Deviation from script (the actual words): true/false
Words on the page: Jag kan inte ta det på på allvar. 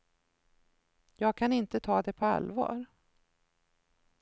true